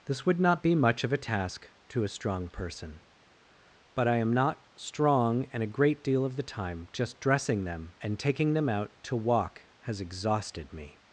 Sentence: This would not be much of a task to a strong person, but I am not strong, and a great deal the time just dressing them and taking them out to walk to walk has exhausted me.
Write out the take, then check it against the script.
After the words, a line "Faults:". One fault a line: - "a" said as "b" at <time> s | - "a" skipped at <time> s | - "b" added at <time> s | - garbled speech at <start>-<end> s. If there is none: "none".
This would not be much of a task to a strong person, but I am not strong, and a great deal of the time just dressing them and taking them out to walk has exhausted me.
Faults:
- "of" added at 6.2 s
- "to walk" skipped at 9.7 s